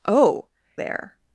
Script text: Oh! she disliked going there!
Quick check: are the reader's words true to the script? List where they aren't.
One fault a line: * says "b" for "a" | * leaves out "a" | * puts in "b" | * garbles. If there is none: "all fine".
* leaves out "she disliked going"